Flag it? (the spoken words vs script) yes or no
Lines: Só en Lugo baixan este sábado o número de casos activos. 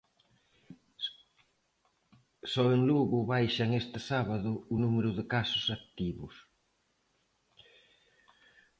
no